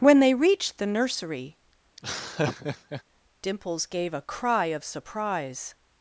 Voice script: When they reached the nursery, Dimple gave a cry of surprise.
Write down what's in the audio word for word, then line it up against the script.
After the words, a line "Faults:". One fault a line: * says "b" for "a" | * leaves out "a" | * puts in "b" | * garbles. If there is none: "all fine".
When they reached the nursery, Dimples gave a cry of surprise.
Faults:
* says "Dimples" for "Dimple"